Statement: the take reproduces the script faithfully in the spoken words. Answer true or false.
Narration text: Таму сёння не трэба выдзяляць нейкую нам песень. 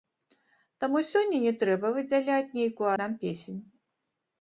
true